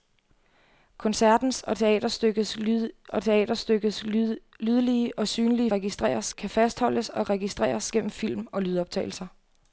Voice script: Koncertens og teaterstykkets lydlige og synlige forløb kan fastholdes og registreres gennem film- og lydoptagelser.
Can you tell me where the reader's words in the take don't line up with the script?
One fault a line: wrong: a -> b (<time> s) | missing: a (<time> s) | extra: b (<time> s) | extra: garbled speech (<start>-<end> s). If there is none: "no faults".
extra: og teaterstykkets (3.1 s)
wrong: forløb -> registreres (5.7 s)